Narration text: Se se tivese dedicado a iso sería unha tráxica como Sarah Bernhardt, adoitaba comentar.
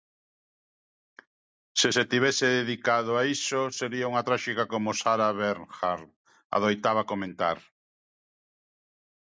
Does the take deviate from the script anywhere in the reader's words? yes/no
no